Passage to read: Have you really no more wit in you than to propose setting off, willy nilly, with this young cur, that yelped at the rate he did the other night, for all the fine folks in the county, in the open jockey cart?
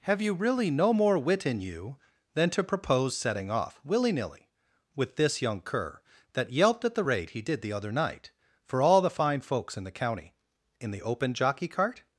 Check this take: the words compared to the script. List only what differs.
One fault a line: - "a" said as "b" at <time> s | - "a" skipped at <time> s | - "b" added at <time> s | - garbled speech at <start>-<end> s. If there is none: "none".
none